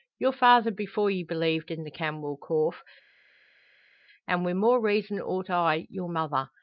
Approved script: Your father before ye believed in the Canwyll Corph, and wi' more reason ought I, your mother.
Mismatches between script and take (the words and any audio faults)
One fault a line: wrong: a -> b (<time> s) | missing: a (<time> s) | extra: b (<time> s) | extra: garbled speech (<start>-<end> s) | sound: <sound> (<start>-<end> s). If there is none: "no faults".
no faults